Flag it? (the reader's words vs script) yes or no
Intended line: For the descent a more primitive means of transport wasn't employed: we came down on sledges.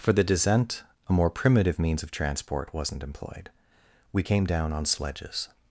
no